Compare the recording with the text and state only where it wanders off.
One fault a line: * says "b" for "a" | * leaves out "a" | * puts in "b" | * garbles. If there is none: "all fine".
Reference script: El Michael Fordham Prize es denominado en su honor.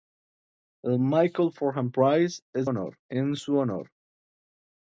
* says "honor" for "denominado"